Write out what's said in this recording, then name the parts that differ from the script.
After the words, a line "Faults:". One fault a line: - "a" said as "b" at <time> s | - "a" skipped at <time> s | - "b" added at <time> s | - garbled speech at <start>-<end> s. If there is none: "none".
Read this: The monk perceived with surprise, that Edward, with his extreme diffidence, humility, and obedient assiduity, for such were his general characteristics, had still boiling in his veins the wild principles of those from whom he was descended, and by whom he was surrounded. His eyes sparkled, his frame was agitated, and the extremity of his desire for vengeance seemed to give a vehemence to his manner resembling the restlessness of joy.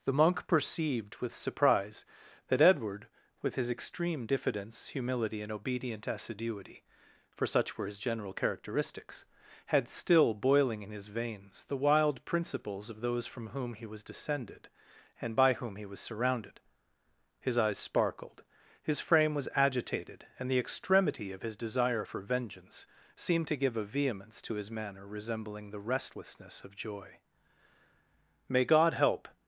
The monk perceived with surprise, that Edward, with his extreme diffidence, humility, and obedient assiduity, for such were his general characteristics, had still boiling in his veins the wild principles of those from whom he was descended, and by whom he was surrounded. His eyes sparkled, his frame was agitated, and the extremity of his desire for vengeance seemed to give a vehemence to his manner resembling the restlessness of joy. "May God help
Faults:
- "May God help" added at 28.5 s